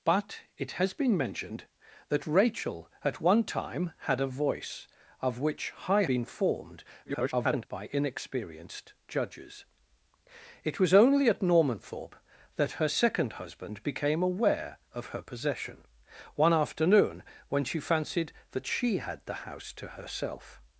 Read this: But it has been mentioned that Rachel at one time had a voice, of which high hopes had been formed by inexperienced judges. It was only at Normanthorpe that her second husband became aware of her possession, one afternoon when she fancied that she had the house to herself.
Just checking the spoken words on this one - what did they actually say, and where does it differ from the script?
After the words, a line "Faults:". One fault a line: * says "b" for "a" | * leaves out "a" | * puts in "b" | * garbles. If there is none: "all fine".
But it has been mentioned that Rachel at one time had a voice, of which high been formed [garbled] by inexperienced judges. It was only at Normanthorpe that her second husband became aware of her possession, one afternoon when she fancied that she had the house to herself.
Faults:
* leaves out "hopes had"
* garbles